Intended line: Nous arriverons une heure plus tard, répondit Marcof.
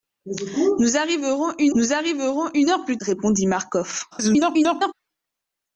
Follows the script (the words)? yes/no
no